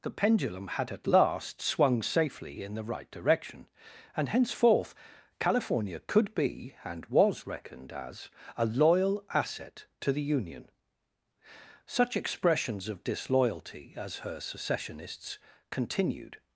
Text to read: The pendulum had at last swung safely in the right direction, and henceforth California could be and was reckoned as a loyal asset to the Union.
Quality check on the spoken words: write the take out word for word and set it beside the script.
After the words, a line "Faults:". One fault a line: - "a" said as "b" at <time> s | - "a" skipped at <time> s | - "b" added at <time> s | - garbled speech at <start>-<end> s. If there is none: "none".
The pendulum had at last swung safely in the right direction, and henceforth California could be and was reckoned as a loyal asset to the Union. Such expressions of disloyalty as her secessionists continued
Faults:
- "Such expressions of disloyalty as her secessionists continued" added at 11.8 s